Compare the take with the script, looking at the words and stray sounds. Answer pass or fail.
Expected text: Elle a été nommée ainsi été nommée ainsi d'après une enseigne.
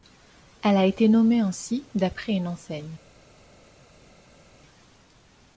fail